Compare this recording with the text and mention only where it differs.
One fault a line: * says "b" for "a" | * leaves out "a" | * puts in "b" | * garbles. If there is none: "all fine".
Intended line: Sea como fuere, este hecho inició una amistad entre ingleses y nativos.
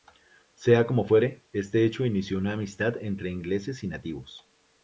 all fine